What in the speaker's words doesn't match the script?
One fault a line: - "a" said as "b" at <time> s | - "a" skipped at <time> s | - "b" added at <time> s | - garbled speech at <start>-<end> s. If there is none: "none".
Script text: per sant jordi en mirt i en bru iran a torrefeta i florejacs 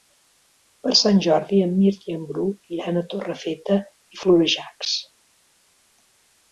none